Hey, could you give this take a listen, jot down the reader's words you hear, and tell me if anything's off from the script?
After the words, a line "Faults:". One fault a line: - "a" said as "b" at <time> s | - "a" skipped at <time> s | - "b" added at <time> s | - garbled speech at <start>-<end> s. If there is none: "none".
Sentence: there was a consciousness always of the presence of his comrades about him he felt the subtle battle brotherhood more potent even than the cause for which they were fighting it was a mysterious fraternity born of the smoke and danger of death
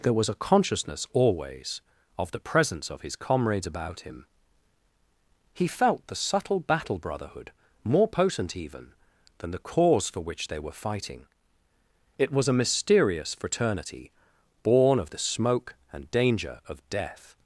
there was a consciousness always of the presence of his comrades about him he felt the subtle battle brotherhood more potent even than the cause for which they were fighting it was a mysterious fraternity born of the smoke and danger of death
Faults:
none